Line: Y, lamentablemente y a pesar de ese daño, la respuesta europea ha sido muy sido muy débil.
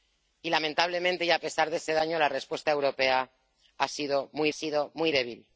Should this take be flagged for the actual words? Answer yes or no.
no